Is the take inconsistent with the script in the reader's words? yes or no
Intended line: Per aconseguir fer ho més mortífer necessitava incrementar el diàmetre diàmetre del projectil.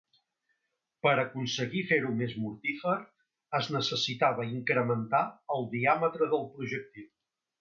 yes